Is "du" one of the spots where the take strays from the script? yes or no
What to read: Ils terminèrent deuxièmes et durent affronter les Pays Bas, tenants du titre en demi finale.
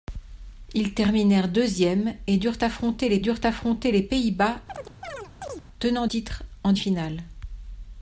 yes